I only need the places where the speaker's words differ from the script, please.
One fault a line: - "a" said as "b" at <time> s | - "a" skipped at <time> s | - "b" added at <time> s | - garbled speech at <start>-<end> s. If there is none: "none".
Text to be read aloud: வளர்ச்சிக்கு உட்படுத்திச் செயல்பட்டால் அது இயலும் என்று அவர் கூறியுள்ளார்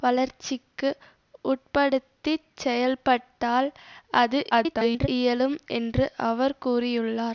- garbled speech at 4.5-5.1 s